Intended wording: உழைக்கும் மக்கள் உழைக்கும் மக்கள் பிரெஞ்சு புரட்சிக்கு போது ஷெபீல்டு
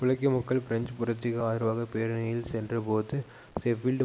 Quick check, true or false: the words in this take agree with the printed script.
false